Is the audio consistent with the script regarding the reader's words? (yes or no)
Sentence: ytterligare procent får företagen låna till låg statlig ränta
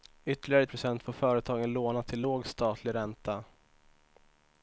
yes